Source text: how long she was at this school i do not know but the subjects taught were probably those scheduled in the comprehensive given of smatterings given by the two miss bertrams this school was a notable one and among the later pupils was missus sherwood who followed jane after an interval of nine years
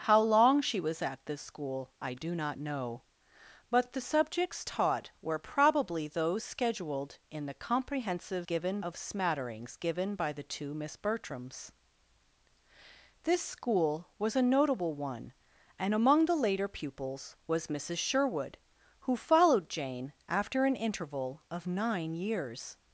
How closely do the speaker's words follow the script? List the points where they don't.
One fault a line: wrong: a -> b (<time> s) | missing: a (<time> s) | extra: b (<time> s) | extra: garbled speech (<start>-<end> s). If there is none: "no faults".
no faults